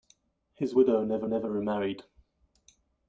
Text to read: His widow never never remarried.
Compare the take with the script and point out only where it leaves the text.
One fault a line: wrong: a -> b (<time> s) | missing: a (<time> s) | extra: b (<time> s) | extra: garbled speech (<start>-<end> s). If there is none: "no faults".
no faults